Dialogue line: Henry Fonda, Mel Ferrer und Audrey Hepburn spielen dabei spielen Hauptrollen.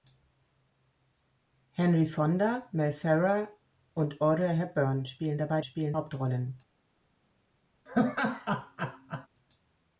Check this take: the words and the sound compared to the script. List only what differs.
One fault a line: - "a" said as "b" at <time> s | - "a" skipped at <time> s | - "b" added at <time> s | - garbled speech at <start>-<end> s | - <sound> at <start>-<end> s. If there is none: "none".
- laugh at 7.9-9.3 s